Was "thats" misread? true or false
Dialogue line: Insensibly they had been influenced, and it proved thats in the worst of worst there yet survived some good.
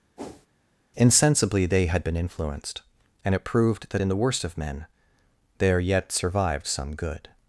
true